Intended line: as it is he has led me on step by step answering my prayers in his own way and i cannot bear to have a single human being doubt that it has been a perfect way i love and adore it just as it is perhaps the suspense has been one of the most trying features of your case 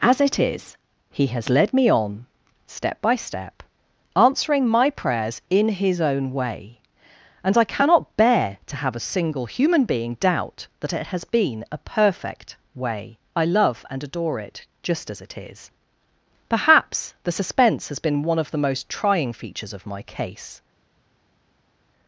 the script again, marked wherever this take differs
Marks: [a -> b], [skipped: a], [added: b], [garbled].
as it is he has led me on step by step answering my prayers in his own way and i cannot bear to have a single human being doubt that it has been a perfect way i love and adore it just as it is perhaps the suspense has been one of the most trying features of [your -> my] case